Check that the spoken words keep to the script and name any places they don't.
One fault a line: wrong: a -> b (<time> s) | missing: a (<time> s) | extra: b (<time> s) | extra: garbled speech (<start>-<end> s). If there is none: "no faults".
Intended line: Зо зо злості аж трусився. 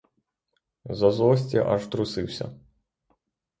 missing: зо (1.1 s)